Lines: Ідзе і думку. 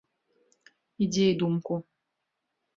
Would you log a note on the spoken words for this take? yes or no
no